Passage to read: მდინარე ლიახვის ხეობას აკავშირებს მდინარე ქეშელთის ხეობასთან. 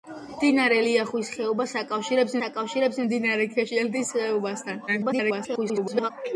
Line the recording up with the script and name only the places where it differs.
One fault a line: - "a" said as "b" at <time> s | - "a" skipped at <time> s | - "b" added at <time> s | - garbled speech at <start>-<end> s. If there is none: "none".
- "აკავშირებს" added at 2.4 s
- garbled speech at 4.9-6.1 s